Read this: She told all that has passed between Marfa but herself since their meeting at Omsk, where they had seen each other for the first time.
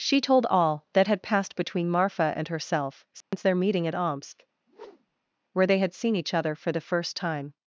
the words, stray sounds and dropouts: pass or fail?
fail